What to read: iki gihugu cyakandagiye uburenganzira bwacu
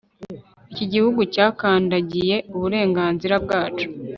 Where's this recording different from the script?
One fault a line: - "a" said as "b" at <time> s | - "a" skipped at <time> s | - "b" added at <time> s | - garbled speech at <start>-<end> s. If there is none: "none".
none